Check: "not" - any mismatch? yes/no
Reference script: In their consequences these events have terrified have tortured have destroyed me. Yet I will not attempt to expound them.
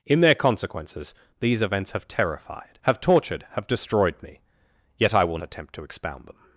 yes